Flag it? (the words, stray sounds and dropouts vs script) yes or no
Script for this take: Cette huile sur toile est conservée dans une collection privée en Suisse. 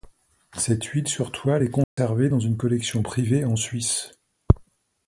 yes